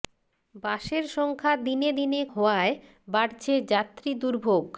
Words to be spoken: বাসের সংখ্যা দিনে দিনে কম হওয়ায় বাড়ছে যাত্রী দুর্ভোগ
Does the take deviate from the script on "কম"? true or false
true